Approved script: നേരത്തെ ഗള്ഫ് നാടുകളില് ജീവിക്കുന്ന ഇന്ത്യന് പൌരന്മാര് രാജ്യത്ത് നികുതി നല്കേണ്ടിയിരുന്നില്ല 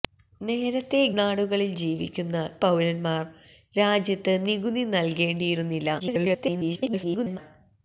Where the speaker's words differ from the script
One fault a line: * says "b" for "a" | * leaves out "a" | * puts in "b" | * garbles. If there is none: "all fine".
* leaves out "ഗള്ഫ്"
* leaves out "ഇന്ത്യന്"
* garbles